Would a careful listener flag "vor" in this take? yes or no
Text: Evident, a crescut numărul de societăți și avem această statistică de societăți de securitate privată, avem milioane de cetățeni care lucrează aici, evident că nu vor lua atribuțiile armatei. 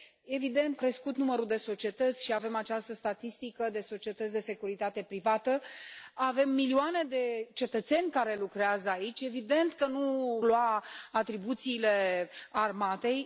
yes